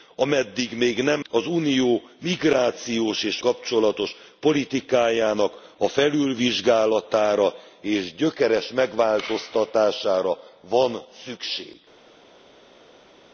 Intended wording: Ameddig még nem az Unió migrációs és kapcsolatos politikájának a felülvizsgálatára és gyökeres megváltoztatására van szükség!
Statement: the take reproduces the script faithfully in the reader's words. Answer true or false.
true